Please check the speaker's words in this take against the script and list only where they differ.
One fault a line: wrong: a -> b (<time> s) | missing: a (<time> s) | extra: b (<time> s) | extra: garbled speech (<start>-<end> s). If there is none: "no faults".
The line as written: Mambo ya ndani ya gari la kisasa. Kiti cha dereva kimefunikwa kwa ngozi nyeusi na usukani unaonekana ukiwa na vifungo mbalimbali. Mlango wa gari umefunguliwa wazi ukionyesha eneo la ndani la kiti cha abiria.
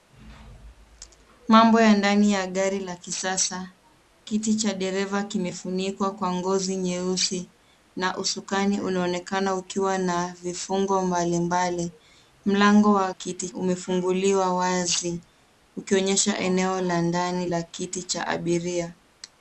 wrong: gari -> kiti (13.1 s)